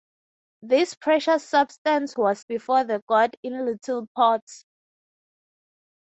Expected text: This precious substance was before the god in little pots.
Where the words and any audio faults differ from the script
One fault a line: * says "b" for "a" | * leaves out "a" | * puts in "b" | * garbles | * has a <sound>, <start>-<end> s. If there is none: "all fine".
all fine